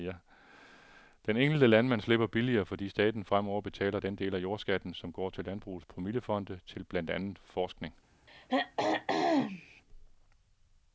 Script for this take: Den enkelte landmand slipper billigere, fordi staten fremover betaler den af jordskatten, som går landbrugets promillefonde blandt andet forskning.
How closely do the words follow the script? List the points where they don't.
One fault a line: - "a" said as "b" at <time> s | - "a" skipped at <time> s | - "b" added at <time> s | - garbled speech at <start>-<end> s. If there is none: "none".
- "del" added at 4.2 s
- "til" added at 5.3 s
- "til" added at 6.7 s